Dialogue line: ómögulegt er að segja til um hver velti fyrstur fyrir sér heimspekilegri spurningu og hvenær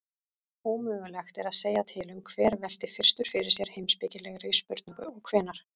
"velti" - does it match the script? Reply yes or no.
yes